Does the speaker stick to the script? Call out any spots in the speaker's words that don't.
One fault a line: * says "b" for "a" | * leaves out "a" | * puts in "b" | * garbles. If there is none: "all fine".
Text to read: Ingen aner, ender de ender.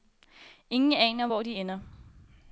* says "hvor" for "ender"